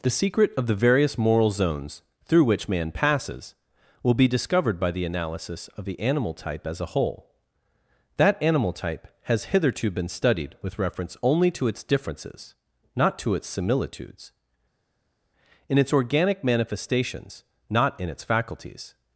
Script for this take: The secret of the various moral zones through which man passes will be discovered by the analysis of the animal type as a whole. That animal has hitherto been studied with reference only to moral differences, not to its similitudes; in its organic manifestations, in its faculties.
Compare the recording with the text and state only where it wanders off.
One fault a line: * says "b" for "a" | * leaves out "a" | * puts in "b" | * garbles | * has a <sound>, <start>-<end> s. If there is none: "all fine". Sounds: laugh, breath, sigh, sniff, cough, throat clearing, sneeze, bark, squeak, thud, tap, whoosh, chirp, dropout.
* puts in "type"
* says "its" for "moral"
* puts in "not"